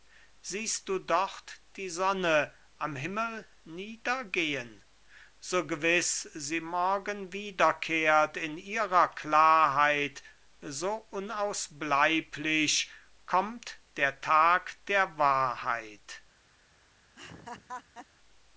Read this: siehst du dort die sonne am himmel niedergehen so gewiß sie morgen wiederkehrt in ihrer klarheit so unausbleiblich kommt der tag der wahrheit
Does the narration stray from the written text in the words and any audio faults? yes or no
yes